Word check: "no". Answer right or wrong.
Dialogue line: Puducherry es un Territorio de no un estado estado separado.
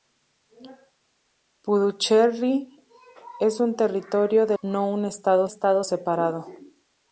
right